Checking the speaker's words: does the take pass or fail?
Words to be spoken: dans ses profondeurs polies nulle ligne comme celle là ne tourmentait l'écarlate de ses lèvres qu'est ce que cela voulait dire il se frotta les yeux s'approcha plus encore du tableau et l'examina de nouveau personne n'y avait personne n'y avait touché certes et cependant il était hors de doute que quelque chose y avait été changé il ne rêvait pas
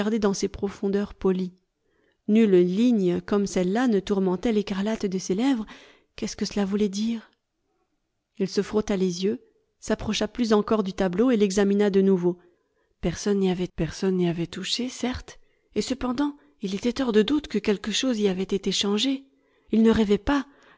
pass